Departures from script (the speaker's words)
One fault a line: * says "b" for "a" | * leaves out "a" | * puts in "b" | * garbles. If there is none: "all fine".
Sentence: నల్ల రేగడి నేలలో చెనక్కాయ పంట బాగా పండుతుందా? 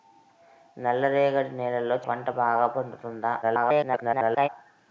* leaves out "చెనక్కాయ"
* garbles